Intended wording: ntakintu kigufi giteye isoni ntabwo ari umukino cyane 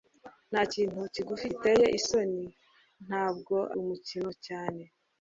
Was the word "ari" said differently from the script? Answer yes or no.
yes